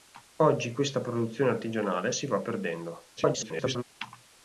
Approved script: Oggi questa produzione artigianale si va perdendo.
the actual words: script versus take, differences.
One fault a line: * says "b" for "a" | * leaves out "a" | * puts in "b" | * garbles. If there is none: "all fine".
* garbles